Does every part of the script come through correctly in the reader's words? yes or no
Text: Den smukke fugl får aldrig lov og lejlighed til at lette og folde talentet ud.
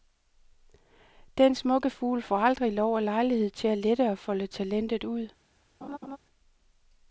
yes